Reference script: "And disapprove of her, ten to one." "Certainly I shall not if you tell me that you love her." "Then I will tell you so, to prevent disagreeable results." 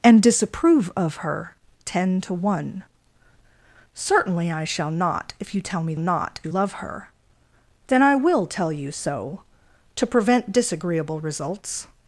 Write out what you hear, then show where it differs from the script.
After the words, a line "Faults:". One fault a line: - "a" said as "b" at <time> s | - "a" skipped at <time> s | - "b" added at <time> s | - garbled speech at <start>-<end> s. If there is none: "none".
"And disapprove of her, ten to one." "Certainly I shall not if you tell me not you love her." "Then I will tell you so, to prevent disagreeable results."
Faults:
- "that" said as "not" at 6.0 s